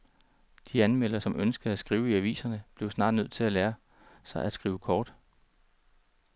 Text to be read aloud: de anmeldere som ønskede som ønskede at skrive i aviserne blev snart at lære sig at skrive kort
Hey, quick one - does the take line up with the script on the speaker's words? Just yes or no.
no